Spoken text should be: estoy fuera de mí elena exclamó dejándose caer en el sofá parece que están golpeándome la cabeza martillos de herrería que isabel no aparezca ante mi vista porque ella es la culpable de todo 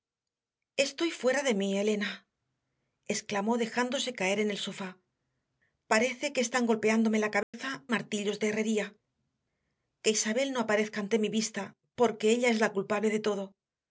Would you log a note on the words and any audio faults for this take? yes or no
yes